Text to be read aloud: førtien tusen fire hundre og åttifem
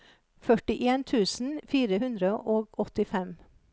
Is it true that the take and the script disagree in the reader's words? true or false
false